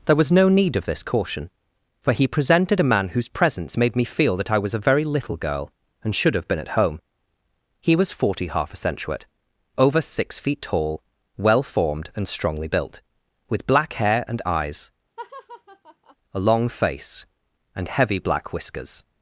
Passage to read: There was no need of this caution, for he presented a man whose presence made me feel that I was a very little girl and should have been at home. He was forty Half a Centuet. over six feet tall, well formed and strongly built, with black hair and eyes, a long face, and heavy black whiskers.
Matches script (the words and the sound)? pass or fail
fail